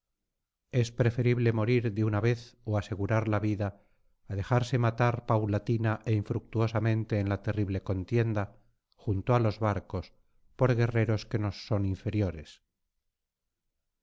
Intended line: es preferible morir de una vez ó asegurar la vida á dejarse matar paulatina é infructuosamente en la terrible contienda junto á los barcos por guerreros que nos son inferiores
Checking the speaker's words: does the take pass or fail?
pass